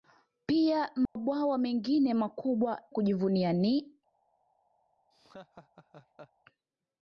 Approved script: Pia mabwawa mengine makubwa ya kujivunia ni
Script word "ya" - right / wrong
wrong